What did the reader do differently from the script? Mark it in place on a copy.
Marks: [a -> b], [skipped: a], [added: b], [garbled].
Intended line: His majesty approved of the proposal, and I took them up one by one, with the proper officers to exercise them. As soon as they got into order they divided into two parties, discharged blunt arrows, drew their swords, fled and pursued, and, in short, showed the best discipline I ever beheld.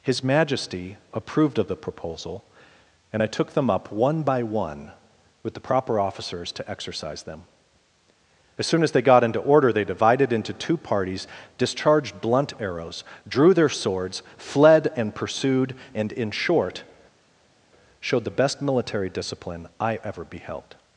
His majesty approved of the proposal, and I took them up one by one, with the proper officers to exercise them. As soon as they got into order they divided into two parties, discharged blunt arrows, drew their swords, fled and pursued, and, in short, showed the best [added: military] discipline I ever beheld.